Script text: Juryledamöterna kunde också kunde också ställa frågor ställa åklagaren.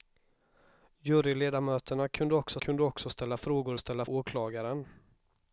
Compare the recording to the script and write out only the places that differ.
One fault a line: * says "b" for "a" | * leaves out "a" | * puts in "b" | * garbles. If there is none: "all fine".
all fine